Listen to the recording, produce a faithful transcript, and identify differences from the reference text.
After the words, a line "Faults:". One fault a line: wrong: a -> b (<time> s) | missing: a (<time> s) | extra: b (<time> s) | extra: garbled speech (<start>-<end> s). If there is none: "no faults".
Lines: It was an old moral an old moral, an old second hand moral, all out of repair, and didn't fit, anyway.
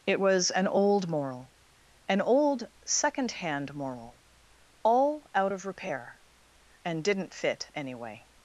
It was an old moral, an old second hand moral, all out of repair, and didn't fit, anyway.
Faults:
missing: moral an old (2.7 s)